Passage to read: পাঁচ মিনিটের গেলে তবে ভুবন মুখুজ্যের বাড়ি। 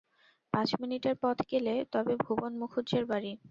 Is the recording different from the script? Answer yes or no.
yes